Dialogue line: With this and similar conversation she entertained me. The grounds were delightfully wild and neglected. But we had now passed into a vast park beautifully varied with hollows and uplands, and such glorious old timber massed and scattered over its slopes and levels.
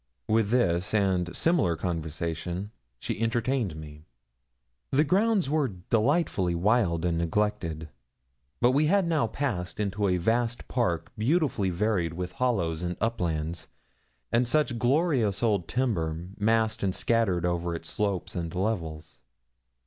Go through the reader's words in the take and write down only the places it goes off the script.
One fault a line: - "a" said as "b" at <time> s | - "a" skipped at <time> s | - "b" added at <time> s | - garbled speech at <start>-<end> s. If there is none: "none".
none